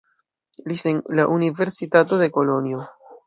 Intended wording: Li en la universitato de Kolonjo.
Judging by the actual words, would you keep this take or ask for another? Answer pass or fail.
pass